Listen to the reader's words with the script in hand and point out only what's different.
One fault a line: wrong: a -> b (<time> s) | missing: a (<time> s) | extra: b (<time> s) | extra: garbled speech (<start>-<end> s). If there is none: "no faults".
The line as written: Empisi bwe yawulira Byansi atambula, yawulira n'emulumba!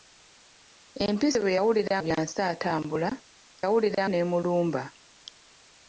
no faults